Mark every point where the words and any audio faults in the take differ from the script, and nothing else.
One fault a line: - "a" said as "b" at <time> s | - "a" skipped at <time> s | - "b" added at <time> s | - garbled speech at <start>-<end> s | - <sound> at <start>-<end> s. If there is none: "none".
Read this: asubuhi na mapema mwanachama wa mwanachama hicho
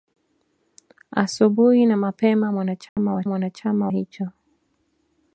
- dropout at 2.9-3.0 s